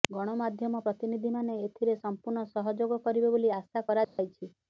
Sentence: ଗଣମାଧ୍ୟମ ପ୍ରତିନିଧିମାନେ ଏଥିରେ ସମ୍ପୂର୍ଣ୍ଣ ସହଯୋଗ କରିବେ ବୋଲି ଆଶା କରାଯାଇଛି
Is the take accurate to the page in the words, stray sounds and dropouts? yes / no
no